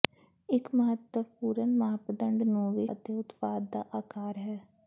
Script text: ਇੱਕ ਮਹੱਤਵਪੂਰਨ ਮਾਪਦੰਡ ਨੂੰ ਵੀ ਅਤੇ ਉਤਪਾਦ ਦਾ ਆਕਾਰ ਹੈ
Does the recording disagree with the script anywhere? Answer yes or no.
no